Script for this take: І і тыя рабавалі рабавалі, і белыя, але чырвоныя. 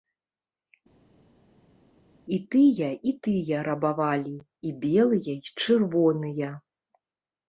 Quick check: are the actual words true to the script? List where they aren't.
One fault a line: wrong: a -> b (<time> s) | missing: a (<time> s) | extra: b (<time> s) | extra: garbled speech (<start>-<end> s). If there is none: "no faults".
extra: тыя (2.5 s)
missing: рабавалі (4.3 s)
wrong: але -> і (5.4 s)